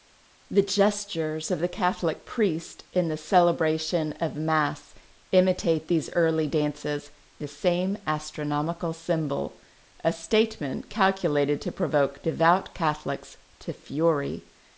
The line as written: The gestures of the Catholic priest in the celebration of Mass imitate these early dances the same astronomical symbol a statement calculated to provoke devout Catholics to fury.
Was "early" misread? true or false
false